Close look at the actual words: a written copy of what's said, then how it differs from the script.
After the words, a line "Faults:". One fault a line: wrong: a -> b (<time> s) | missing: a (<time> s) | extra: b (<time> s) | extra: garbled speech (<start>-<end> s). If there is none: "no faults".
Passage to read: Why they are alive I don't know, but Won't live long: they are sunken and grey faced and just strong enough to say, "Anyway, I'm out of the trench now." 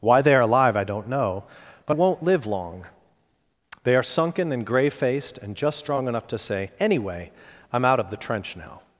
Why they are alive I don't know, but Won't live long: they are sunken and grey faced and just strong enough to say, "Anyway, I'm out of the trench now."
Faults:
no faults